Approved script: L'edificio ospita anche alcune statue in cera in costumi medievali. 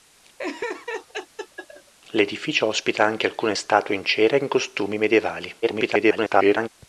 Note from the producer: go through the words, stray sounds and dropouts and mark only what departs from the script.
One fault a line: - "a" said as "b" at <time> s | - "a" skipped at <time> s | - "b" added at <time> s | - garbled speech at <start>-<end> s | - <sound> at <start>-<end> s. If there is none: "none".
- laugh at 0.4-1.9 s
- garbled speech at 5.6-6.7 s